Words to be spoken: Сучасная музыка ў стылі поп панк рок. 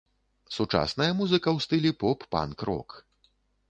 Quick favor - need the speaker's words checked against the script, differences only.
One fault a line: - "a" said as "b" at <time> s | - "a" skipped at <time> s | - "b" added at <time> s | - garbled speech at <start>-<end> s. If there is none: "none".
none